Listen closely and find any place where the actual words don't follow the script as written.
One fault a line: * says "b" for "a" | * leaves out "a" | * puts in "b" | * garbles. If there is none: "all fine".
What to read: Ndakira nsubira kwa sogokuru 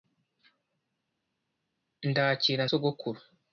* leaves out "nsubira kwa"